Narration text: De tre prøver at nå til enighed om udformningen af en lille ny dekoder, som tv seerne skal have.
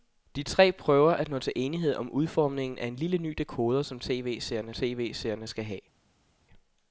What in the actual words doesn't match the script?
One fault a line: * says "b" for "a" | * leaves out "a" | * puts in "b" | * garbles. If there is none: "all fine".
* puts in "tv seerne"